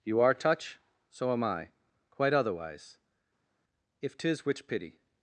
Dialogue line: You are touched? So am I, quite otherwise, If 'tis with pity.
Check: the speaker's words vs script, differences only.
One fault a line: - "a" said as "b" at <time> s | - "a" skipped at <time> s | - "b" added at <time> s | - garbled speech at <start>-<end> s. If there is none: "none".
- "touched" said as "touch" at 0.3 s
- "with" said as "which" at 4.5 s